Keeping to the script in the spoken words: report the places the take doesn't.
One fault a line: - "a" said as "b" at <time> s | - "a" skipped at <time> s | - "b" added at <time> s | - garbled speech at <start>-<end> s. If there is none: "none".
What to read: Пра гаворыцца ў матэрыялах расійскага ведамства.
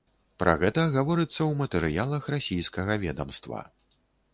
- "гэта" added at 0.6 s